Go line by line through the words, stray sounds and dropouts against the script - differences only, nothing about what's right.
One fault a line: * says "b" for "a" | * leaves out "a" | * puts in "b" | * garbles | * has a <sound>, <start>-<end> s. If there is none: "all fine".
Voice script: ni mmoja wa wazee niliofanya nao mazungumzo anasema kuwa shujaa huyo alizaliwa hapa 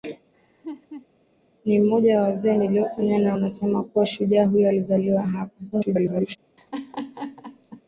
* has a laugh, 0.3-1.1 s
* leaves out "mazungumzo"
* garbles
* has a laugh, 6.6-7.8 s